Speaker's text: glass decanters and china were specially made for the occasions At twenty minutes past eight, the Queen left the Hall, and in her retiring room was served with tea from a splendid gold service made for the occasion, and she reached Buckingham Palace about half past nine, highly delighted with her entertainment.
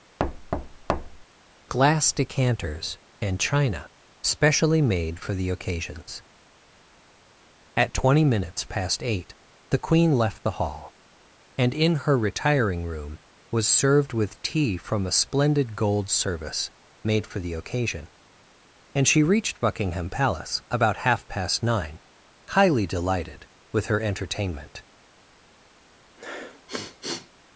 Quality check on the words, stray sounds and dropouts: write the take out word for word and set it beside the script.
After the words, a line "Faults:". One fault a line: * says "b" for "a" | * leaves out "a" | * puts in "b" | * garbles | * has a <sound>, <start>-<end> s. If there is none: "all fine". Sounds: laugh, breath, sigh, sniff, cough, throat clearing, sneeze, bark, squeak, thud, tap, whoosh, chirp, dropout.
glass decanters and china specially made for the occasions At twenty minutes past eight, the Queen left the Hall, and in her retiring room was served with tea from a splendid gold service made for the occasion, and she reached Buckingham Palace about half past nine, highly delighted with her entertainment.
Faults:
* has a thud, 0.2-1.2 s
* leaves out "were"
* has a sniff, 26.2-27.3 s